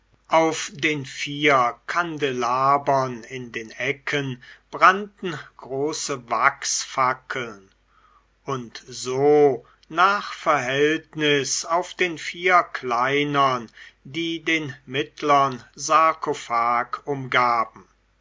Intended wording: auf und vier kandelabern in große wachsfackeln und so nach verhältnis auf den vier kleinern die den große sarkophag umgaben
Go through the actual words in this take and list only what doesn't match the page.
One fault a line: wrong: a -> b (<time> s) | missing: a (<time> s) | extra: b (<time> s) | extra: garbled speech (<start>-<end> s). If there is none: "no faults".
wrong: und -> den (0.7 s)
extra: den ecken brannten (3.5 s)
wrong: große -> mittlern (14.9 s)